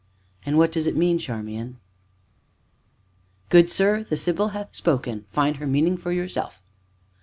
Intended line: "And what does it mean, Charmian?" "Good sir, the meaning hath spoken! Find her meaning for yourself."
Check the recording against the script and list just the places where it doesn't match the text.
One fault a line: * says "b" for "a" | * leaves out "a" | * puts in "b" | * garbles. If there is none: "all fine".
* says "sibyl" for "meaning"